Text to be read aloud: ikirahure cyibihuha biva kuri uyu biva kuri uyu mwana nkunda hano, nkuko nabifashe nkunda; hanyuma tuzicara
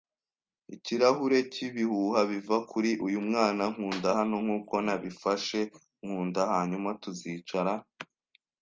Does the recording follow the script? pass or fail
fail